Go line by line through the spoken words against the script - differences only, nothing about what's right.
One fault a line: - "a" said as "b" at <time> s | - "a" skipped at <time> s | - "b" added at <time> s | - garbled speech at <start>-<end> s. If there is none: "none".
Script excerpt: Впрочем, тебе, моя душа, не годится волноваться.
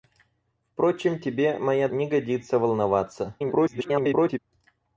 - "душа" skipped at 1.9 s
- garbled speech at 3.4-4.4 s